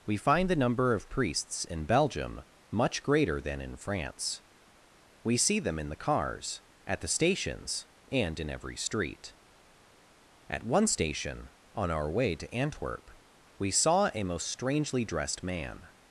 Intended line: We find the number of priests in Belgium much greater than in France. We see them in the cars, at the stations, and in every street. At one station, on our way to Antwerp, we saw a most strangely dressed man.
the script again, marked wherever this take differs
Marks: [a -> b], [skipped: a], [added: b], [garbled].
We find the number of priests in Belgium much greater than in France. We see them in the cars, at the stations, and in every street. At one station, on our way to Antwerp, we saw a most strangely dressed man.